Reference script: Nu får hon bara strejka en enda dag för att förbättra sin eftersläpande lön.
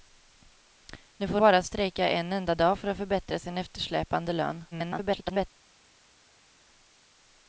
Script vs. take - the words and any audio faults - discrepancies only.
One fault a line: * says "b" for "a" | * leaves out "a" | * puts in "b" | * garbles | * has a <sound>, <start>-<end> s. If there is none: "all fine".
* leaves out "hon"
* garbles